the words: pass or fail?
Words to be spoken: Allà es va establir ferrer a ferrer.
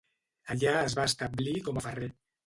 fail